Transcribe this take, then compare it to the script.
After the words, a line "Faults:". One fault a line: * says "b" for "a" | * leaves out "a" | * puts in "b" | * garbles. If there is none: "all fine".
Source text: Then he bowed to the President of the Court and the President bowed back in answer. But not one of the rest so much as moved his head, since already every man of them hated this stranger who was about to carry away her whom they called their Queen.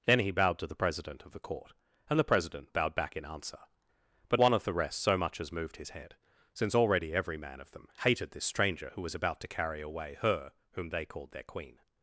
Then he bowed to the President of the Court and the President bowed back in answer. But one of the rest so much as moved his head, since already every man of them hated this stranger who was about to carry away her whom they called their Queen.
Faults:
* leaves out "not"